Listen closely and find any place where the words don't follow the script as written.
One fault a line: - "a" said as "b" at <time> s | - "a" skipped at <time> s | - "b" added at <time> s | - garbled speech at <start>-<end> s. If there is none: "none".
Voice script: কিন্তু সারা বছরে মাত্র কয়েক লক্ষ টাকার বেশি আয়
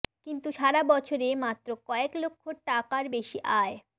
none